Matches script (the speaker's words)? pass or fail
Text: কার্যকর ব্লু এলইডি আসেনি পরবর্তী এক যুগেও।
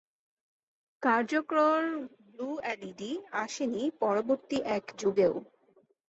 pass